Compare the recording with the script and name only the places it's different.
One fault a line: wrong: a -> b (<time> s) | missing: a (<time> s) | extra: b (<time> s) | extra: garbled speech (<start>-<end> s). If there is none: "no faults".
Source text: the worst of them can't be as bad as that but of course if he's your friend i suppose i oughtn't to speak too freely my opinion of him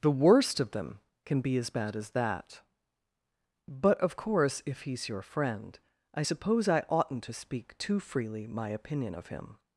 wrong: can't -> can (1.2 s)